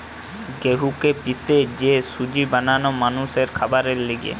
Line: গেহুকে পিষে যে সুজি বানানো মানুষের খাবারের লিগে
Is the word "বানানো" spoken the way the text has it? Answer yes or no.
yes